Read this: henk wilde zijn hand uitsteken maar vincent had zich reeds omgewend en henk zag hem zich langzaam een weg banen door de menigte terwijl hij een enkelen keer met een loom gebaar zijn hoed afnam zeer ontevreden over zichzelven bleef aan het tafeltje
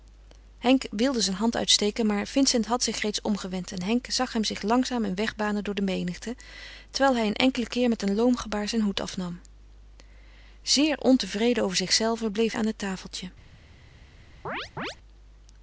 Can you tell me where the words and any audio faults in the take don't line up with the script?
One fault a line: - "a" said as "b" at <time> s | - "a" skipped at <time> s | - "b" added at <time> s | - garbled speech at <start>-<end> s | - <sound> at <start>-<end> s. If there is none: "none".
- chirp at 14.4-15.0 s